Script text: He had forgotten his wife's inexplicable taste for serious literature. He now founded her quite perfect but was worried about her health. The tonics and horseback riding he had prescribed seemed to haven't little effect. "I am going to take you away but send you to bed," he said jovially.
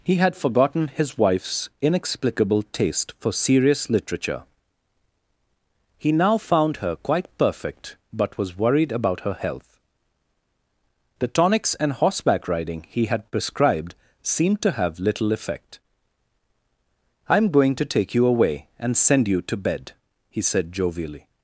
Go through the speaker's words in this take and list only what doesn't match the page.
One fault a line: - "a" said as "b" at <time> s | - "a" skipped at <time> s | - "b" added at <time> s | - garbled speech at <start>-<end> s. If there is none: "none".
- "founded" said as "found" at 6.4 s
- "haven't" said as "have" at 14.7 s
- "but" said as "and" at 18.8 s